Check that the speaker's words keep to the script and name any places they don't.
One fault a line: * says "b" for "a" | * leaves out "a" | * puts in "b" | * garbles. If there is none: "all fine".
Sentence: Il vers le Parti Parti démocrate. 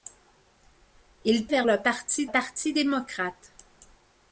all fine